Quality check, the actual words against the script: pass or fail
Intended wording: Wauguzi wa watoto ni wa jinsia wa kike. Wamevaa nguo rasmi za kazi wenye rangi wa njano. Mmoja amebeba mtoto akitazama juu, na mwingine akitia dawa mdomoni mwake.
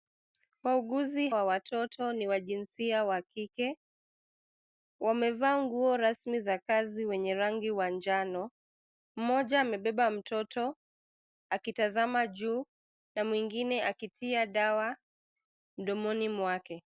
pass